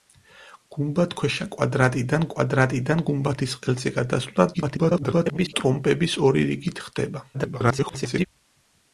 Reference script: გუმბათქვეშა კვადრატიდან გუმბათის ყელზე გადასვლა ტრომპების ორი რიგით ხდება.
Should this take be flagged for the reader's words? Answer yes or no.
yes